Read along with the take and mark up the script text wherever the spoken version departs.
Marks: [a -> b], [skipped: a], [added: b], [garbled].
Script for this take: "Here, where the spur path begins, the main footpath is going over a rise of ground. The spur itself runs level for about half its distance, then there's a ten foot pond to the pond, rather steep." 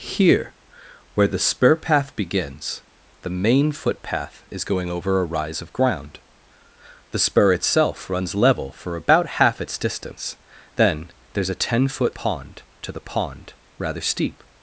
"Here, where the spur path begins, the main footpath is going over a rise of ground. The spur itself runs level for about half its distance, then there's a ten foot pond to the pond, rather steep."